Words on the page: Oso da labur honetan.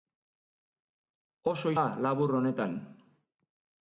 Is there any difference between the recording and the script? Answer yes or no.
no